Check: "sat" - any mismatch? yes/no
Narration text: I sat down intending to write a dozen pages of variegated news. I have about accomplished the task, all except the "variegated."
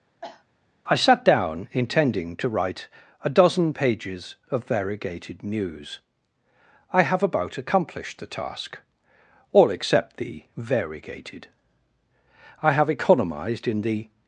no